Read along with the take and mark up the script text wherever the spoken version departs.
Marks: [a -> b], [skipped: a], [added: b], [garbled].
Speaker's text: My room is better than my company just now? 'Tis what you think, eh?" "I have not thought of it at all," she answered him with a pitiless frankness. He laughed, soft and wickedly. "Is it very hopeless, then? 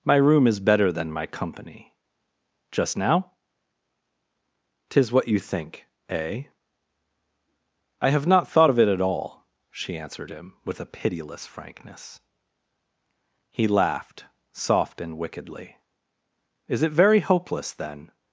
My room is better than my company just now? 'Tis what you think, eh?" "I have not thought of it at all," she answered him with a pitiless frankness. He laughed, soft and wickedly. "Is it very hopeless, then?